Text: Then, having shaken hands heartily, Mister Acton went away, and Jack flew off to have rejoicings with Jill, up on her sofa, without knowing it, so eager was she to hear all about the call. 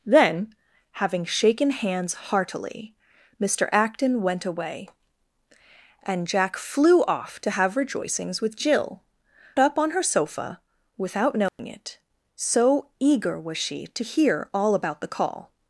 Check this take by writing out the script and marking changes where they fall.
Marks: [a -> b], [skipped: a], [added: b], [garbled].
Then, having shaken hands heartily, Mister Acton went away, and Jack flew off to have rejoicings with Jill, up on her sofa, without knowing it, so eager was she to hear all about the call.